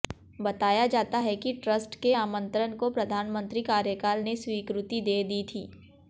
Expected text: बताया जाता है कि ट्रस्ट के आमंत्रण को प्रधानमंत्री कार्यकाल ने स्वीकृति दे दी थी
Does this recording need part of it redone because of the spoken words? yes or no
no